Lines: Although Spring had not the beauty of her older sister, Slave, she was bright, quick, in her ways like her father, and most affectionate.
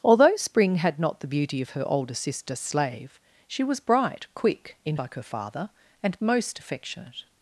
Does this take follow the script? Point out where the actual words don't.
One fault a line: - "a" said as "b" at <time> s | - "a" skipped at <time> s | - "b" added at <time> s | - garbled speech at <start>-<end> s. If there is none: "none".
- "her ways" skipped at 5.0 s